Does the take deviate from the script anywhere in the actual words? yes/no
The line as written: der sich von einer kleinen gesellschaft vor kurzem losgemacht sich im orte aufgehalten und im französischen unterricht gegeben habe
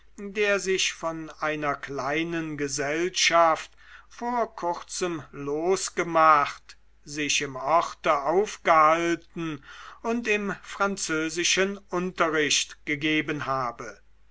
no